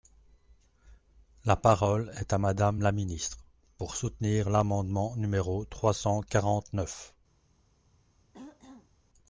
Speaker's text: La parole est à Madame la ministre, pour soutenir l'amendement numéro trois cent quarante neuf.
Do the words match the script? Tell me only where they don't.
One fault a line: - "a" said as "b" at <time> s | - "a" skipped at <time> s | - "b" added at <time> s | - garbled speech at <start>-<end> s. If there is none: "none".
none